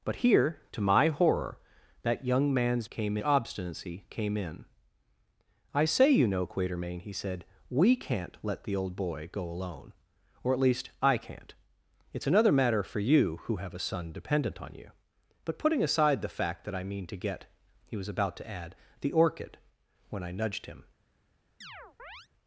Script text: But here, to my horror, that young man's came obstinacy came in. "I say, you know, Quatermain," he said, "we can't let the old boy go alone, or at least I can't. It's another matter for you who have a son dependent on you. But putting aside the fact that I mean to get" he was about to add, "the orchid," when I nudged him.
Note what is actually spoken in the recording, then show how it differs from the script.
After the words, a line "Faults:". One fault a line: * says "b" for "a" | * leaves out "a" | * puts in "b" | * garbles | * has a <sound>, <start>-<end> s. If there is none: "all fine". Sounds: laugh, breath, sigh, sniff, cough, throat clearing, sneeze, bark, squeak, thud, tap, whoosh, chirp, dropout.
But here, to my horror, that young man's came obstinacy came in. "I say, you know, Quatermain," he said, "we can't let the old boy go alone, or at least I can't. It's another matter for you who have a son dependent on you. But putting aside the fact that I mean to get" he was about to add, "the orchid," when I nudged him.
Faults:
* has a chirp, 21.6-22.3 s